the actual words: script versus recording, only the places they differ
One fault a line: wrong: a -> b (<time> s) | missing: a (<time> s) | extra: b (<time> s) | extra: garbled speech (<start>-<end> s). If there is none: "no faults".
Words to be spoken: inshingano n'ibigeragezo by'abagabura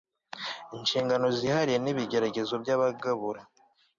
extra: zihariye (1.4 s)